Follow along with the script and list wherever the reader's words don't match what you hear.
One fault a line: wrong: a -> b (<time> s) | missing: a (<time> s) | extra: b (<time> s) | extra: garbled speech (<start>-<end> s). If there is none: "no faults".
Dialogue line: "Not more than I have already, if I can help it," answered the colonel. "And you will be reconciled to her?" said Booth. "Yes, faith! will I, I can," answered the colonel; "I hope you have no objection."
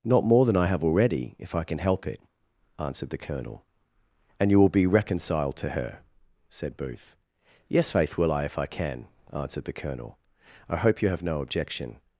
extra: if (8.4 s)